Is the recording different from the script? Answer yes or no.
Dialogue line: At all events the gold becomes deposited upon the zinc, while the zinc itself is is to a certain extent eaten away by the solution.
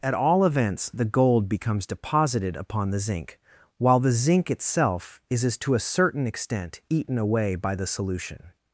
no